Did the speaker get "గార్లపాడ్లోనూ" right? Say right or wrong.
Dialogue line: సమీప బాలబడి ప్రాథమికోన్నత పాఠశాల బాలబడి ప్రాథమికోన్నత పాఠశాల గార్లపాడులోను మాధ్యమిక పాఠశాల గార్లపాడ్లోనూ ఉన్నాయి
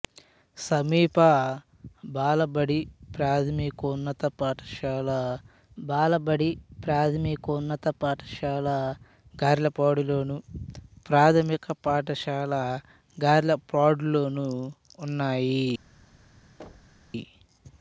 right